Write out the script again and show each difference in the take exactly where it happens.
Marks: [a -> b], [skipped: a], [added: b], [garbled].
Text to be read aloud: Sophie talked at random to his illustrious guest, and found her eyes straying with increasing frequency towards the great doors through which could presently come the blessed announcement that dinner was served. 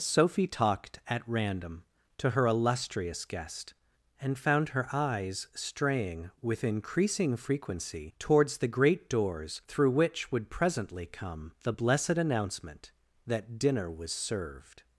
Sophie talked at random to [his -> her] illustrious guest, and found her eyes straying with increasing frequency towards the great doors through which [could -> would] presently come the blessed announcement that dinner was served.